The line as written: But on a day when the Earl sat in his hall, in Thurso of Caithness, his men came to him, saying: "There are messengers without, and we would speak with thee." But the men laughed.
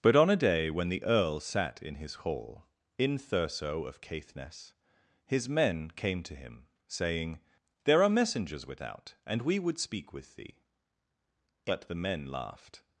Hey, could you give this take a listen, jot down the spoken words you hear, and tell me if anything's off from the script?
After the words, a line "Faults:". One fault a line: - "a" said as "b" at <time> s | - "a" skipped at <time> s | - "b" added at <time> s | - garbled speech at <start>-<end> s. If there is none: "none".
But on a day when the Earl sat in his hall, in Thurso of Caithness, his men came to him, saying: "There are messengers without, and we would speak with thee." But the men laughed.
Faults:
none